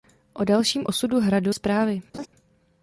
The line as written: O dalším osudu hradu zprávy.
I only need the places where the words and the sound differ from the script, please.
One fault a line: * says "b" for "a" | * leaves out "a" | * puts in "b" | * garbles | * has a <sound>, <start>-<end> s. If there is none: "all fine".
* has a laugh, 2.1-2.3 s